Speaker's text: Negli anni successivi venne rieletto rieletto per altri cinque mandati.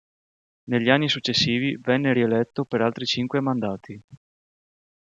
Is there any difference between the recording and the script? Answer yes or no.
yes